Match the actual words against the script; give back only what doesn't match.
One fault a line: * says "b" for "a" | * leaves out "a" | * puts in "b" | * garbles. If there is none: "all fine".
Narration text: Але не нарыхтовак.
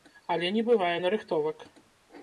* puts in "бывае"